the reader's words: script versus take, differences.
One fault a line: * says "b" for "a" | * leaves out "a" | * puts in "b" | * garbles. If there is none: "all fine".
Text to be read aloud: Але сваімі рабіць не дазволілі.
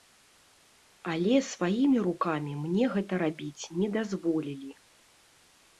* puts in "рукамі мне гэта"